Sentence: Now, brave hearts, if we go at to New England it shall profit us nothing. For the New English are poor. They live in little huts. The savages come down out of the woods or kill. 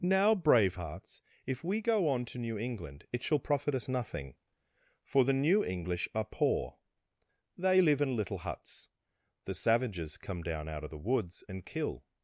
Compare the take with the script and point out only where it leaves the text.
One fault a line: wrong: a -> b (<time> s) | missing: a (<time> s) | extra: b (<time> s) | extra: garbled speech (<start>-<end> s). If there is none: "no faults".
wrong: at -> on (2.1 s)
wrong: or -> and (11.5 s)